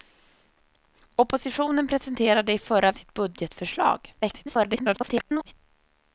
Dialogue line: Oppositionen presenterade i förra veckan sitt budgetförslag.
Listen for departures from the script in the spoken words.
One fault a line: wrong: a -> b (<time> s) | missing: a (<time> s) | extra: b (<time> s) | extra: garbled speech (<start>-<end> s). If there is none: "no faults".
missing: veckan (2.9 s)
extra: garbled speech (4.2-5.5 s)